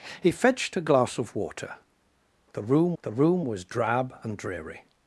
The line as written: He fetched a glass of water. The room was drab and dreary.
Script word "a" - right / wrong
right